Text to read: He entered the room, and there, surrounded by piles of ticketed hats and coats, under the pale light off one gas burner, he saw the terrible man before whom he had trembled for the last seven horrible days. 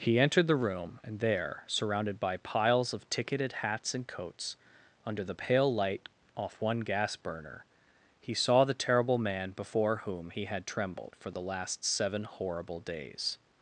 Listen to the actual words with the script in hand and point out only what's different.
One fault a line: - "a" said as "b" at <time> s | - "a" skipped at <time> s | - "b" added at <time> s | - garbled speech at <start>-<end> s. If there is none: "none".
none